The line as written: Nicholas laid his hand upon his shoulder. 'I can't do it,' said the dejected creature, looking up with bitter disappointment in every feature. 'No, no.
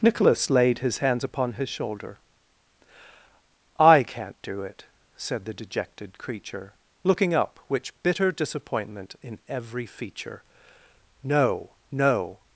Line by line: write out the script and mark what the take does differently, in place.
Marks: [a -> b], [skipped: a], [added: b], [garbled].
Nicholas laid his [hand -> hands] upon his shoulder. 'I can't do it,' said the dejected creature, looking up [with -> which] bitter disappointment in every feature. 'No, no.